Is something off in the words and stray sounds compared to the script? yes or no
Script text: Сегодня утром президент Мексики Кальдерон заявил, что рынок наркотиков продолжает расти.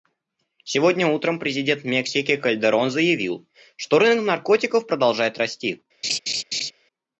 yes